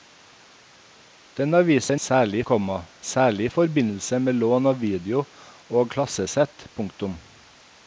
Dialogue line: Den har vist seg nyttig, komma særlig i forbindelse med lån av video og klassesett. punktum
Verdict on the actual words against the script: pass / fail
fail